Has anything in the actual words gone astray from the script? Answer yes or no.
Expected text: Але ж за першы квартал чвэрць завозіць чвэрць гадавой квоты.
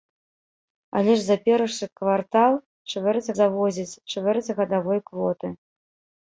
no